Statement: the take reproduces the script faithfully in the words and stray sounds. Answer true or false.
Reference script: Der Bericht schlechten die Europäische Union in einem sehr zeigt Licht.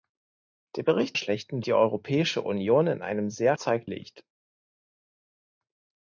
true